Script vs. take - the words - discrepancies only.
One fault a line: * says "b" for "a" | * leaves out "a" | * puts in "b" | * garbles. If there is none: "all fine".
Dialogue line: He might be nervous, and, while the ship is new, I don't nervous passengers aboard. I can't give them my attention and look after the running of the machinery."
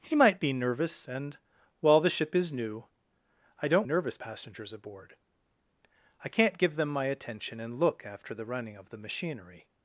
all fine